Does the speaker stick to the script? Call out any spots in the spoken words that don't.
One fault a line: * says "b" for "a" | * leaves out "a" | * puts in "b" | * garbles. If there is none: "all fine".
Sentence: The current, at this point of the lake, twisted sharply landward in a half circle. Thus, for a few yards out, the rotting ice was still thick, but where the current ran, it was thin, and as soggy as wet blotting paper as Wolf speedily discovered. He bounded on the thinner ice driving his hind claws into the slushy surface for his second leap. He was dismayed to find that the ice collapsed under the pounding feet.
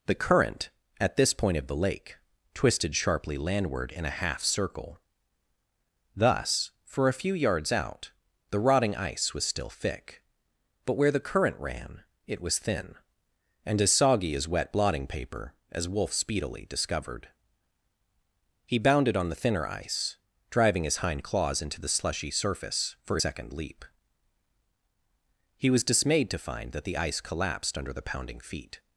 * leaves out "his"